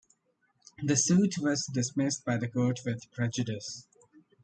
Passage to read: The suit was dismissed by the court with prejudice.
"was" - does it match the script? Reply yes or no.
yes